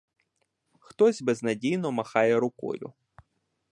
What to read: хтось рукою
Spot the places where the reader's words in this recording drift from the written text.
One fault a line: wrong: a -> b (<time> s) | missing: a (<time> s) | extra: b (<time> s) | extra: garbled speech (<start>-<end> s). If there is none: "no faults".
extra: безнадійно махає (1.2 s)